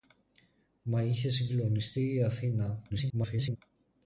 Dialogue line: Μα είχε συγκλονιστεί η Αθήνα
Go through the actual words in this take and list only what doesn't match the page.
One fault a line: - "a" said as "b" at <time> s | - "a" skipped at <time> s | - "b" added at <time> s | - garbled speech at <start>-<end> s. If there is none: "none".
- garbled speech at 2.9-3.6 s